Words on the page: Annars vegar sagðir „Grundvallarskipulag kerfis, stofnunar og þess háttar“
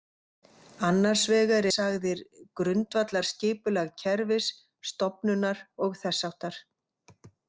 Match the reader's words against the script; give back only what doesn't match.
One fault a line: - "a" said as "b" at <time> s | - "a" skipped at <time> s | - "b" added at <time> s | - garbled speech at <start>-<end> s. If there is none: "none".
none